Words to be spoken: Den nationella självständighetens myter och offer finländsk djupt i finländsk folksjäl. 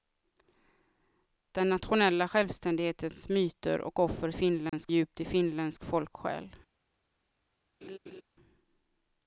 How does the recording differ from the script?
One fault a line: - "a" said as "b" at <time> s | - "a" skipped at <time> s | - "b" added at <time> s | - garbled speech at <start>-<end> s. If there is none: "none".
none